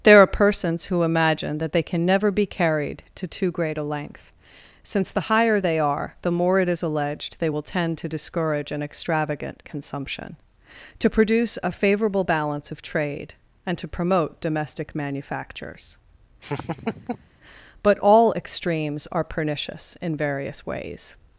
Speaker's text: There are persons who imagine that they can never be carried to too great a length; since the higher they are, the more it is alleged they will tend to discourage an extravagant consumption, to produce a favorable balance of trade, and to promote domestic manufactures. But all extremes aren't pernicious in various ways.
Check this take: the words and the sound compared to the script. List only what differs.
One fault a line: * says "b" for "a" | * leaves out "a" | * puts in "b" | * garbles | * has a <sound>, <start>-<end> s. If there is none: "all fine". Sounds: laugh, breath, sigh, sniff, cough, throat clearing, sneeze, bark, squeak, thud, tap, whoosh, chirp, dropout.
* has a laugh, 16.4-17.3 s
* says "are" for "aren't"